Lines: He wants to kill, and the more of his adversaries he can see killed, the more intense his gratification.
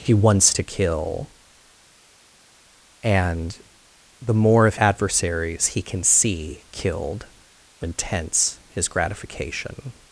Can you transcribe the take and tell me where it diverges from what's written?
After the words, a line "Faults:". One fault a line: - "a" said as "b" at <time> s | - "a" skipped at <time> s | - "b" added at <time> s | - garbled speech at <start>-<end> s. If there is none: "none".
He wants to kill, and the more of adversaries he can see killed, the intense his gratification.
Faults:
- "his" skipped at 4.8 s
- "more" skipped at 7.9 s